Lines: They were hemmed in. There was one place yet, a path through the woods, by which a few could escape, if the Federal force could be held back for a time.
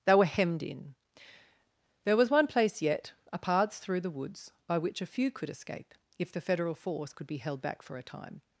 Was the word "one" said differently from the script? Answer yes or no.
no